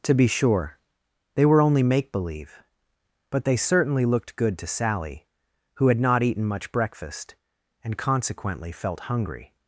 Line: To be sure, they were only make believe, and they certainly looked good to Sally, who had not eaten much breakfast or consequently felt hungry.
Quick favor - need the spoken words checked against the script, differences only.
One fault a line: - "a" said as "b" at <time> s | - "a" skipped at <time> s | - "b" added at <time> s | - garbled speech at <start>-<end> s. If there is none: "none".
- "and" said as "but" at 3.3 s
- "or" said as "and" at 7.8 s